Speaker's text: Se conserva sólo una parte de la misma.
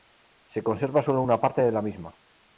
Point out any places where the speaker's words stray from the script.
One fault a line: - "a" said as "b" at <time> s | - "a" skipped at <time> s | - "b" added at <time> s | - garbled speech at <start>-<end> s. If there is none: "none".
none